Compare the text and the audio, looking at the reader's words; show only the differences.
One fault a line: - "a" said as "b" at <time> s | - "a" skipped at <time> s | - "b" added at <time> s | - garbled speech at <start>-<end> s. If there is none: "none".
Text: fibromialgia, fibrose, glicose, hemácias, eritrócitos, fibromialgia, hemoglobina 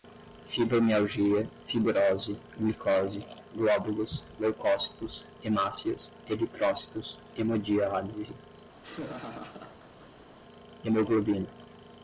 - "glóbulos leucócitos" added at 3.5 s
- "fibromialgia" said as "hemodiálise" at 7.3 s